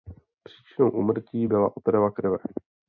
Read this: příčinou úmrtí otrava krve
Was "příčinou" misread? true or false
false